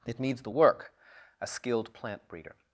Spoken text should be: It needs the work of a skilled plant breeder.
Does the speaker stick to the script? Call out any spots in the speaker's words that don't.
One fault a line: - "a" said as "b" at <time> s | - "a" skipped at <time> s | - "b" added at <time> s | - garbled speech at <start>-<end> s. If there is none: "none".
- "of" skipped at 0.9 s